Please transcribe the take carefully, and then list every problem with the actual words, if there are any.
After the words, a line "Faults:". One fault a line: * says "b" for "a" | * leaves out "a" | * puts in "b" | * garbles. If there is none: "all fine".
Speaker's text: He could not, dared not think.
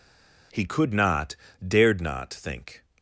He could not, dared not think.
Faults:
all fine